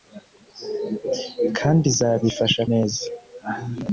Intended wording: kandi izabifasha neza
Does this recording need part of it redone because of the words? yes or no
no